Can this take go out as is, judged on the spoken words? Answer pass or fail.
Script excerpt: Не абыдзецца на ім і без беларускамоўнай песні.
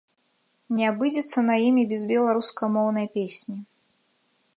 pass